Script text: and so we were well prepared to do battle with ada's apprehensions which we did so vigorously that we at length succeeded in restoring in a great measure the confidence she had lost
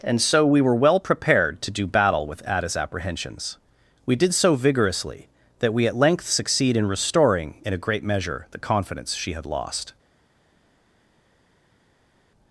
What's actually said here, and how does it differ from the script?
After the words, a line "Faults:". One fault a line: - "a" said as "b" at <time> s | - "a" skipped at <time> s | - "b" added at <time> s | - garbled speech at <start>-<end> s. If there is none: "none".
and so we were well prepared to do battle with ada's apprehensions we did so vigorously that we at length succeed in restoring in a great measure the confidence she had lost
Faults:
- "which" skipped at 3.6 s
- "succeeded" said as "succeed" at 6.3 s